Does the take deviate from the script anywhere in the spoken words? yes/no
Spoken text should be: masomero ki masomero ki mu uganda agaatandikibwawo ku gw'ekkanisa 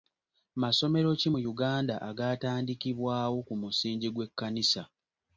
yes